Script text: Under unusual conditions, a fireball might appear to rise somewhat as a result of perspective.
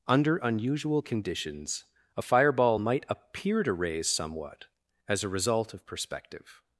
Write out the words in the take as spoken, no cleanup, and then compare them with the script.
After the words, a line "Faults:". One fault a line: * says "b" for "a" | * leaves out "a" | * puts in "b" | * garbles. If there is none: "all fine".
Under unusual conditions, a fireball might appear to raise somewhat as a result of perspective.
Faults:
* says "raise" for "rise"